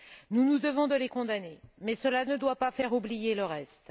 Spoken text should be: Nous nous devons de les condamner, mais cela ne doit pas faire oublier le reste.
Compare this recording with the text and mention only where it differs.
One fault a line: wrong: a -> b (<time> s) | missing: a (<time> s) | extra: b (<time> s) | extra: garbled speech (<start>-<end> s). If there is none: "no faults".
no faults